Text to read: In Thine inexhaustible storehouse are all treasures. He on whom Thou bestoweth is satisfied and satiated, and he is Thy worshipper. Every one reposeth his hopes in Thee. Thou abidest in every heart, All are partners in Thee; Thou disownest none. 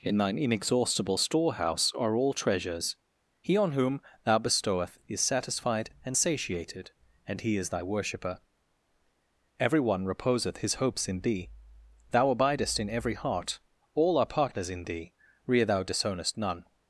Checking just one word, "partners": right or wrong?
right